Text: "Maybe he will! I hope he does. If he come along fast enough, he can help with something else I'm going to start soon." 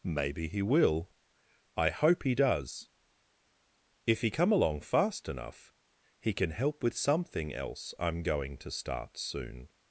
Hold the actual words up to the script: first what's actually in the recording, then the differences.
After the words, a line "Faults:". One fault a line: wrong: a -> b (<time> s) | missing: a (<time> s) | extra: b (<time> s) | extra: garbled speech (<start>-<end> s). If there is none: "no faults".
"Maybe he will! I hope he does. If he come along fast enough, he can help with something else I'm going to start soon."
Faults:
no faults